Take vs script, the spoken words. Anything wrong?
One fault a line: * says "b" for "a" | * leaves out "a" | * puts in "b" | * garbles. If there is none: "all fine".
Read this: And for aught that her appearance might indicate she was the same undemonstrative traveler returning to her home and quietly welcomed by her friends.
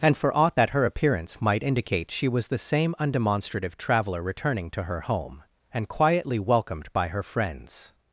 all fine